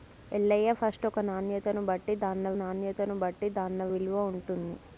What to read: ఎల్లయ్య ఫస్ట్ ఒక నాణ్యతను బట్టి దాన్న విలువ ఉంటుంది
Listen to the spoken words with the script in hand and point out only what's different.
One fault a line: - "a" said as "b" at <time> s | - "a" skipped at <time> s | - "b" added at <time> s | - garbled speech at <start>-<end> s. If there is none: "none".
- "నాణ్యతను బట్టి దాన్న" added at 2.6 s